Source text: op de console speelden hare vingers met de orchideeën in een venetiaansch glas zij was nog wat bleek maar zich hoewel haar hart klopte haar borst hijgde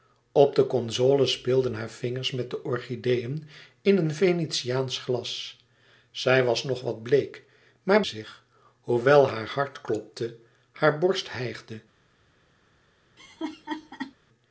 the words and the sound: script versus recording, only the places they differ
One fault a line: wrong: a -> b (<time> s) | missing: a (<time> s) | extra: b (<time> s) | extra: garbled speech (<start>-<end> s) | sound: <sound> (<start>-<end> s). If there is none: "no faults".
sound: laugh (13.2-14.1 s)